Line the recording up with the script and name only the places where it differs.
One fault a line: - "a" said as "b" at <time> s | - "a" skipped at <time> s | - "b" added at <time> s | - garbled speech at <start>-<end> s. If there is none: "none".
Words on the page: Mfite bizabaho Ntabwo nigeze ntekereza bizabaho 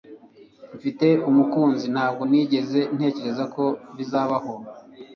- "bizabaho" said as "umukunzi" at 1.3 s
- "ko" added at 3.5 s